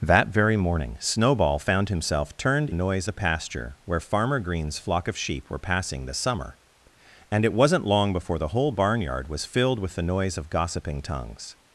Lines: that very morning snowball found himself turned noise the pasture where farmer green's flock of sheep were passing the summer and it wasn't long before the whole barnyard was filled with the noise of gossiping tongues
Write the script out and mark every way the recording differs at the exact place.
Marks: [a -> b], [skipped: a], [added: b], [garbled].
that very morning snowball found himself turned noise the pasture where farmer green's flock of sheep were passing the summer and it wasn't long before the whole barnyard was filled with the noise of gossiping tongues